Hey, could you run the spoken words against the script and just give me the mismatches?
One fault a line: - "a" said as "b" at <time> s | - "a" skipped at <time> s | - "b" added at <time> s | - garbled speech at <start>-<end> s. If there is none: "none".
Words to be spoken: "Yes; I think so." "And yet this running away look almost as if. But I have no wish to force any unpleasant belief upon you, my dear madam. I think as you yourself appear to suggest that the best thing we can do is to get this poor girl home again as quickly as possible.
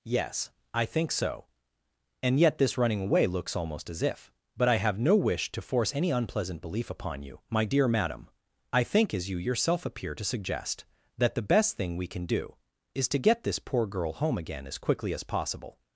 - "look" said as "looks" at 3.3 s